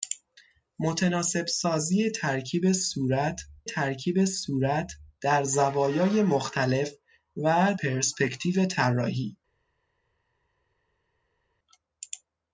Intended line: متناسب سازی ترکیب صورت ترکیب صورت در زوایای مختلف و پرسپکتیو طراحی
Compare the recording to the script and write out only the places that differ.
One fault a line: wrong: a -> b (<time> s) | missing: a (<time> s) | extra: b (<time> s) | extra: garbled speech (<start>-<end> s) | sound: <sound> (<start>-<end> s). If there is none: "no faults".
no faults